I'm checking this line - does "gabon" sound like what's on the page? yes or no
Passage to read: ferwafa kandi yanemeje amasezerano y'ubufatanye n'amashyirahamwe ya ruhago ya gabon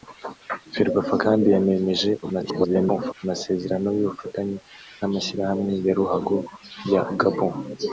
yes